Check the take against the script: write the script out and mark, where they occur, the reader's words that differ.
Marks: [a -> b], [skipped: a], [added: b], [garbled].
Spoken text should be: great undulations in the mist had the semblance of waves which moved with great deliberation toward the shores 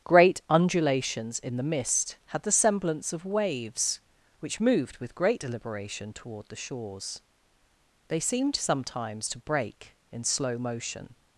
great undulations in the mist had the semblance of waves which moved with great deliberation toward the shores [added: they seemed sometimes to break in slow motion]